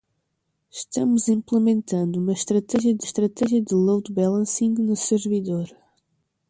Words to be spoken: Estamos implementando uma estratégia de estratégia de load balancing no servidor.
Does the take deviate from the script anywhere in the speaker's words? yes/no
no